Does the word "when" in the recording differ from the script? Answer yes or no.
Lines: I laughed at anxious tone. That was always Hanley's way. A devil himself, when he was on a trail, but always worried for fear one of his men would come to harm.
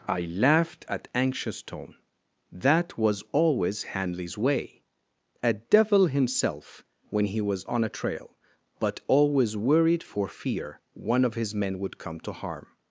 no